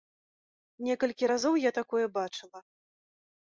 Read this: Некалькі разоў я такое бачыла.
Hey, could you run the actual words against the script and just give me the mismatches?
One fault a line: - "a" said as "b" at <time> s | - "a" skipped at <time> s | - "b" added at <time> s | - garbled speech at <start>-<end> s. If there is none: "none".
none